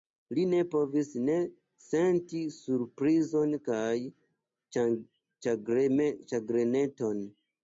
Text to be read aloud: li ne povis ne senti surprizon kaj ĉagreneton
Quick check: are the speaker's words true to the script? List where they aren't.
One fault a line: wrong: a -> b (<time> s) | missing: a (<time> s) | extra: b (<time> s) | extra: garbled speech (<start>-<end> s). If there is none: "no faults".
no faults